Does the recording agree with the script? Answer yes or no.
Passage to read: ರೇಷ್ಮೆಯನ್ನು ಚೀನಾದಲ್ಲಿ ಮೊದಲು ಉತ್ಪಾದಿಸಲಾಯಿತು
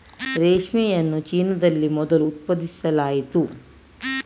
yes